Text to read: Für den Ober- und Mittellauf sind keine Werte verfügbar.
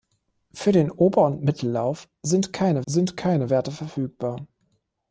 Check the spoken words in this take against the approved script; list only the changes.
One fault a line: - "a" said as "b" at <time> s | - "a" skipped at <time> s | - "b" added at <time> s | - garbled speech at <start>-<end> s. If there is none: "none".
- "sind keine" added at 2.9 s